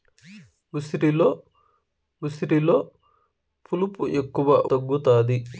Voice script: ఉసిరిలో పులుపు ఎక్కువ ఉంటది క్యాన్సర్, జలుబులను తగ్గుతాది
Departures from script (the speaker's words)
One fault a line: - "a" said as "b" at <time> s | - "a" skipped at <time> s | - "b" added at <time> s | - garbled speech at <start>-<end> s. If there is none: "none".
- "ఉసిరిలో" added at 2.2 s
- "ఉంటది క్యాన్సర్ జలుబులను" skipped at 4.5 s